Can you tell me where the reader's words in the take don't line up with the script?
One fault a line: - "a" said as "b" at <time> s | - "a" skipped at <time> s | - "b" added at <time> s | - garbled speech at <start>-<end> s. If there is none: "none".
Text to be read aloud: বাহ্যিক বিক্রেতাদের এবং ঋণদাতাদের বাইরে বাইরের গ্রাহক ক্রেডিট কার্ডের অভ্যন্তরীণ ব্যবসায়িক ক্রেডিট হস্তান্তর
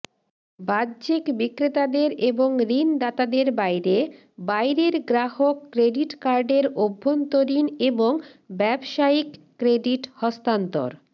- "এবং" added at 7.9 s